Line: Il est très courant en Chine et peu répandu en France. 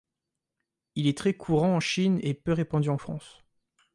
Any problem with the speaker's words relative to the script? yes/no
no